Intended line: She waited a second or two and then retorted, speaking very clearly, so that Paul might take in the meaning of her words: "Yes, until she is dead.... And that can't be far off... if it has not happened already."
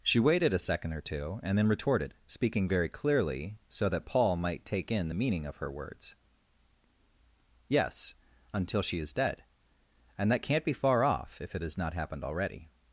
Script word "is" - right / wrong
right